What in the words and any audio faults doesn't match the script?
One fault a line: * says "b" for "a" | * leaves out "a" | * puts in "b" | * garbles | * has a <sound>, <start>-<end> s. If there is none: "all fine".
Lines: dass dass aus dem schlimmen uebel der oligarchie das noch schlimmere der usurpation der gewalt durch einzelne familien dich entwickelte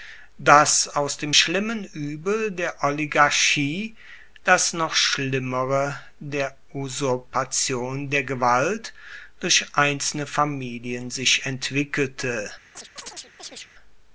* leaves out "dass"
* says "sich" for "dich"
* has a chirp, 12.7-13.7 s